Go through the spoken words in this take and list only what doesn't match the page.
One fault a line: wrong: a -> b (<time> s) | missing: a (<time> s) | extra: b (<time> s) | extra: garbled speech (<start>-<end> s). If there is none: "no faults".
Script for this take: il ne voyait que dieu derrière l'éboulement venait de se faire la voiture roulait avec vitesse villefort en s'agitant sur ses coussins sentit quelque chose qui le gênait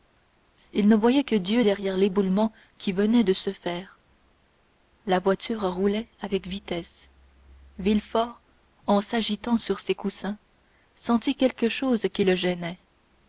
extra: qui (2.8 s)